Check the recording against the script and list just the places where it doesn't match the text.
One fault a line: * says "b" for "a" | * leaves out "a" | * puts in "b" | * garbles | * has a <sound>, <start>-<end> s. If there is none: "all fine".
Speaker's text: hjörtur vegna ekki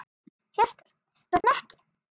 * has a dropout, 1.4-1.4 s